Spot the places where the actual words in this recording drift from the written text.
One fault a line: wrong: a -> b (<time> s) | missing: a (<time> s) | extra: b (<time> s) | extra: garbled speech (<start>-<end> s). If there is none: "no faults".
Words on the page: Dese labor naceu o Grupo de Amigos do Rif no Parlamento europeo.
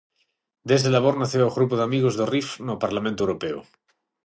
no faults